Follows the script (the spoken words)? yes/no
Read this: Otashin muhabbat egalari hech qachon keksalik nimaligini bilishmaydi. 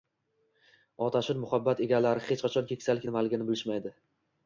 yes